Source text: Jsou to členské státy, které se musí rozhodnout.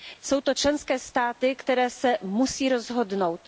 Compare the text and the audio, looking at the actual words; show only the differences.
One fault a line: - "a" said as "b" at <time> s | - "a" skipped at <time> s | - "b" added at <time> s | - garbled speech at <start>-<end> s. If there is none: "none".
none